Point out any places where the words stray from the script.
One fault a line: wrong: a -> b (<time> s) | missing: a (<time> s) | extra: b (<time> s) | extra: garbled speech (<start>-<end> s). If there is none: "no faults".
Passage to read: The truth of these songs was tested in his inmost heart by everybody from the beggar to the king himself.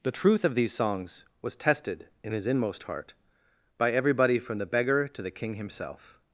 no faults